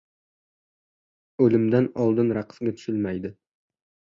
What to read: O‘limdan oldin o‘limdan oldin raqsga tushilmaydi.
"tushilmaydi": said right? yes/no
yes